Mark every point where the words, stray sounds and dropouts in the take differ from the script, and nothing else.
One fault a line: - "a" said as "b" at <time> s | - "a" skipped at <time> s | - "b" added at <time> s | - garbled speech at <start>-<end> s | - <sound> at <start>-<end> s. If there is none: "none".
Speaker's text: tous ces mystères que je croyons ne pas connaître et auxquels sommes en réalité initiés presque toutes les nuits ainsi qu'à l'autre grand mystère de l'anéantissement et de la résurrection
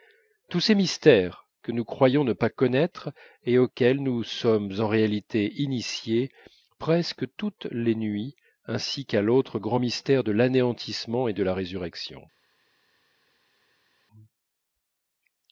- "je" said as "nous" at 1.7 s
- "nous" added at 4.0 s